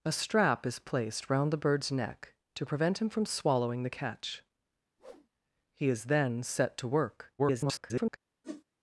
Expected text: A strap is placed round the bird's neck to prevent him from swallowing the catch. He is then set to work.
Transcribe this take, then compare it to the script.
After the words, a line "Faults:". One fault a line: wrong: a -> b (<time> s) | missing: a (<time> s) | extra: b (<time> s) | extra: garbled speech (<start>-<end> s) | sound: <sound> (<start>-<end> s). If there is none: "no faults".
A strap is placed round the bird's neck to prevent him from swallowing the catch. He is then set to work. [garbled]
Faults:
sound: whoosh (5.0-5.3 s)
extra: garbled speech (7.4-8.2 s)
sound: whoosh (8.4-8.6 s)